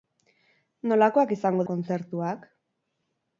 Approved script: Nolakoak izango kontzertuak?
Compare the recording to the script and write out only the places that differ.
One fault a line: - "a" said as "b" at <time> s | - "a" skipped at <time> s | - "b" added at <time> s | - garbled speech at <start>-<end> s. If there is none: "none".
none